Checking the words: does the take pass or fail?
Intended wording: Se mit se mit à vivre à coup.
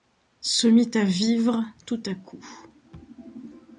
fail